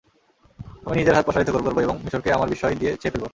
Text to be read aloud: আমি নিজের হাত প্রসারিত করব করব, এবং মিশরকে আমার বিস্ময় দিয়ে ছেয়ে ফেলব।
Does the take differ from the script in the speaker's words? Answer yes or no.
no